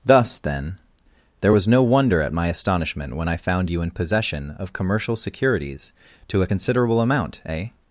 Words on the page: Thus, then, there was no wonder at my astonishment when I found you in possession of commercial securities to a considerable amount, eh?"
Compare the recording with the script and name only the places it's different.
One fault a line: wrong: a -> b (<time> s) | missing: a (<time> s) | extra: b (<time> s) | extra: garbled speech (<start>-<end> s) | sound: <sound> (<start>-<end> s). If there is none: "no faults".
no faults